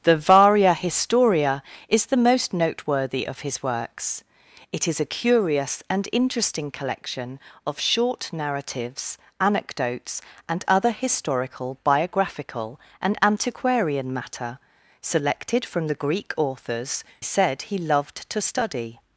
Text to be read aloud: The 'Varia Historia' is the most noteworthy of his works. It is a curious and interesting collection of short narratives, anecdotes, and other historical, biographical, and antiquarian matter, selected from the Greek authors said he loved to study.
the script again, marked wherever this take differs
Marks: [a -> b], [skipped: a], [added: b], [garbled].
The 'Varia Historia' is the most noteworthy of his works. It is a curious and interesting collection of short narratives, anecdotes, and other historical, biographical, and antiquarian matter, selected from the Greek authors said he loved to study.